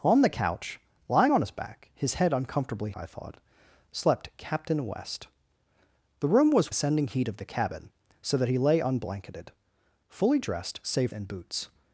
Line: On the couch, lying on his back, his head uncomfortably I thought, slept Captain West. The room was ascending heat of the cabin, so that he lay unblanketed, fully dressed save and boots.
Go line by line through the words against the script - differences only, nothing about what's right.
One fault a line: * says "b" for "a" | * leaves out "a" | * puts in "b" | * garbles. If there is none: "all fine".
all fine